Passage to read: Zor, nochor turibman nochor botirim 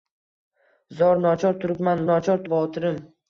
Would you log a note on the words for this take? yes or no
no